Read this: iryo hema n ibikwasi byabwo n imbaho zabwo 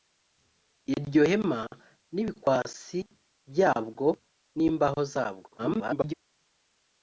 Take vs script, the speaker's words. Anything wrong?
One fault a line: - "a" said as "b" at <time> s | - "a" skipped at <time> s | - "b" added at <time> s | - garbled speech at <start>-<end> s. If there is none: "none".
- garbled speech at 5.6-6.1 s